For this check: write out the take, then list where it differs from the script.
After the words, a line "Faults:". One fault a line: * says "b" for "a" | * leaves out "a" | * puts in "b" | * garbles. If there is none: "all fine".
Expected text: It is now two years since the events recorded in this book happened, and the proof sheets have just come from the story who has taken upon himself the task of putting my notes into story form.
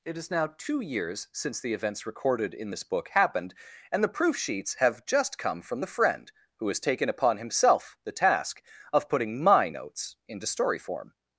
It is now two years since the events recorded in this book happened, and the proof sheets have just come from the friend who has taken upon himself the task of putting my notes into story form.
Faults:
* says "friend" for "story"